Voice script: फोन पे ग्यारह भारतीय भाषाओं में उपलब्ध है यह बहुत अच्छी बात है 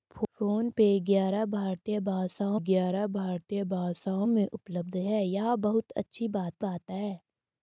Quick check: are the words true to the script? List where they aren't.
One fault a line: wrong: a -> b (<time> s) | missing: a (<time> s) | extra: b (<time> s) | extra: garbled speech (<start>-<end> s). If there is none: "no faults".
extra: ग्यारह भारतीय भाषाओं (2.6 s)
extra: बात (6.6 s)